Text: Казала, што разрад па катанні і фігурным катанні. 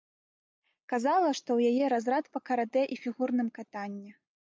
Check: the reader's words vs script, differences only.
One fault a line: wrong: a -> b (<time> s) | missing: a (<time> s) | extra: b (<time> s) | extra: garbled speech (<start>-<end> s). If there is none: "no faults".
extra: ў яе (1.6 s)
wrong: катанні -> каратэ (2.5 s)